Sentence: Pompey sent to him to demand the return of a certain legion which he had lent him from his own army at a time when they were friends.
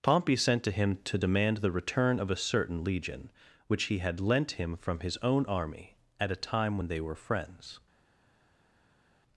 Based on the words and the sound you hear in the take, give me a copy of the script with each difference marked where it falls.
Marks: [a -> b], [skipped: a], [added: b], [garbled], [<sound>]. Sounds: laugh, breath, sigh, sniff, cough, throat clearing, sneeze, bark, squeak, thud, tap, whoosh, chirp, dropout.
Pompey sent to him to demand the return of a certain legion which he had lent him from his own army at a time when they were friends.